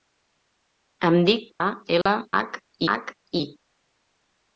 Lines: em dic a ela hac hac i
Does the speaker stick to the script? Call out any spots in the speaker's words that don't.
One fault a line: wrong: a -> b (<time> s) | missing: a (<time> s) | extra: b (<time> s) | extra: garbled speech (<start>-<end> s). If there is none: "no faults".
no faults